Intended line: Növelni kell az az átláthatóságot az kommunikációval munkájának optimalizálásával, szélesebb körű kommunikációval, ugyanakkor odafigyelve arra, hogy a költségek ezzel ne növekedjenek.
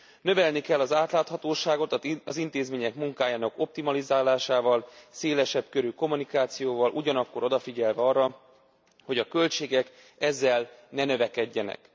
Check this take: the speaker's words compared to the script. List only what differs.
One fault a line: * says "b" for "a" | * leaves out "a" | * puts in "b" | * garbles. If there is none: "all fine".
* leaves out "az"
* says "intézmények" for "kommunikációval"